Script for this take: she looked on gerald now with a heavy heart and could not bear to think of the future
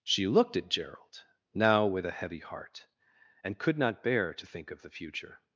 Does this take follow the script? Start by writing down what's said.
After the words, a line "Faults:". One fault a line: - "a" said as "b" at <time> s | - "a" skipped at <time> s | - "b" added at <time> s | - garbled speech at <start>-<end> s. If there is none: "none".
she looked at gerald now with a heavy heart and could not bear to think of the future
Faults:
- "on" said as "at" at 0.6 s